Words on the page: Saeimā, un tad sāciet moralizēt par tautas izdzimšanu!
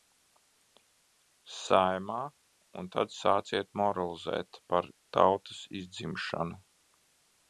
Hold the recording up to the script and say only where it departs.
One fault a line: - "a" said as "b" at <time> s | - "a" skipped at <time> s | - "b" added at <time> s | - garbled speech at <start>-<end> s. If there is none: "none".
none